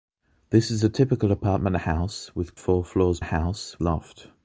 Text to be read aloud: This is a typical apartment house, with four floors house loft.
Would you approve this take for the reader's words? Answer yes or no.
yes